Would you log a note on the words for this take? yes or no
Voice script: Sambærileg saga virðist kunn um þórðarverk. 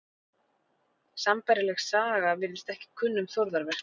yes